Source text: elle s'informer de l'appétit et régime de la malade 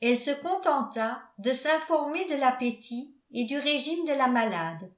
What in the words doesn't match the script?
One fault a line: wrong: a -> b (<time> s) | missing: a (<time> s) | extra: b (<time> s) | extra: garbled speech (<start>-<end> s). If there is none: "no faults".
extra: se contenta de (0.2 s)
extra: du (3.5 s)